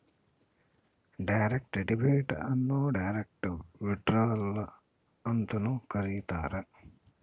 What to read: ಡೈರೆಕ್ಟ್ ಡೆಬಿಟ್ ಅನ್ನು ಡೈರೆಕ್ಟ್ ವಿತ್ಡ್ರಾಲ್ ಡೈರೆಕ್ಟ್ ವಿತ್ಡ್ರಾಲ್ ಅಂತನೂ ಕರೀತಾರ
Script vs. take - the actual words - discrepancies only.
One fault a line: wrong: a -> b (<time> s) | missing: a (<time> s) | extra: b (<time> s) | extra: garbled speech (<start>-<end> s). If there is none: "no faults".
missing: ಡೈರೆಕ್ಟ್ ವಿತ್ಡ್ರಾಲ್ (4.5 s)